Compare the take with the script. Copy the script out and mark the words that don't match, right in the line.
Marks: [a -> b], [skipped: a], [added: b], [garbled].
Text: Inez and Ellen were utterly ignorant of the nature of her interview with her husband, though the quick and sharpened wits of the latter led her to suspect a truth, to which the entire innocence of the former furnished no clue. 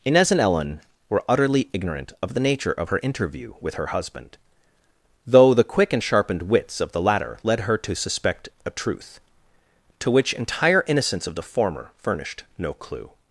Inez and Ellen were utterly ignorant of the nature of her interview with her husband, though the quick and sharpened wits of the latter led her to suspect a truth, to which [skipped: the] entire innocence of the former furnished no clue.